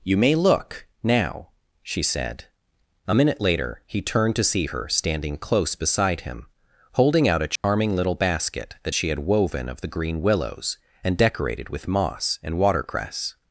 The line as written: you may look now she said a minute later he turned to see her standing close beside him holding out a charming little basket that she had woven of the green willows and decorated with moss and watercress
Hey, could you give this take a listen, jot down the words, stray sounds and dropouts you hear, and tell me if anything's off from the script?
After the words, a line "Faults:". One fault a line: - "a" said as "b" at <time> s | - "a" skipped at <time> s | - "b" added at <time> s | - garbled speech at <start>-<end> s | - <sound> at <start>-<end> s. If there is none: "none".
you may look now she said a minute later he turned to see her standing close beside him holding out a charming little basket that she had woven of the green willows and decorated with moss and watercress
Faults:
- dropout at 7.6-7.6 s